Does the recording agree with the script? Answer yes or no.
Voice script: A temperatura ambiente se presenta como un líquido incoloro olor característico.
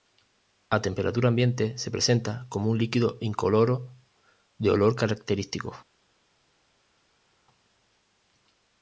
no